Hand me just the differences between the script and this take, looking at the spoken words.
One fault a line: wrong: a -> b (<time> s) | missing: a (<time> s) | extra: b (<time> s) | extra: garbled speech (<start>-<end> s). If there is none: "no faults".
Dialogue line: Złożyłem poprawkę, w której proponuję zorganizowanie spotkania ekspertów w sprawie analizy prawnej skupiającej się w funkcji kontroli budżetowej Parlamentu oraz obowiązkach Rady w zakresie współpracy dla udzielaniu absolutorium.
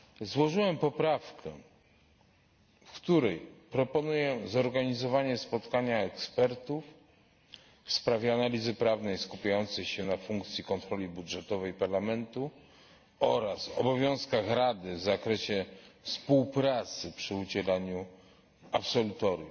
wrong: w -> na (10.0 s)
wrong: dla -> przy (17.1 s)